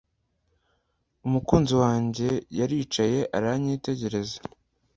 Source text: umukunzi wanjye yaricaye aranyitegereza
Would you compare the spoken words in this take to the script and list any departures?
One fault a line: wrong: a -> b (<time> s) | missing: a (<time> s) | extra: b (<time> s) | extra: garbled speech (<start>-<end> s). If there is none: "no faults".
no faults